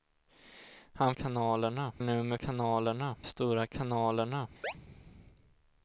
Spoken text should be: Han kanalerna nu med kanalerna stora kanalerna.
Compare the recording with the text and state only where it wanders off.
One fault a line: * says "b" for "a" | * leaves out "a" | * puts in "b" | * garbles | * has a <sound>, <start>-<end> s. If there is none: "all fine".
* has a chirp, 4.6-4.7 s